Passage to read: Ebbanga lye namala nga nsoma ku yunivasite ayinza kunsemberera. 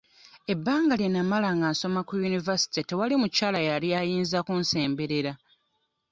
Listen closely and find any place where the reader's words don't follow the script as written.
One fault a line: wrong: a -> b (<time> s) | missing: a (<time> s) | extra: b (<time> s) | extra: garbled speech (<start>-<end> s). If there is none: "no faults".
extra: tewali mukyala yali (2.9 s)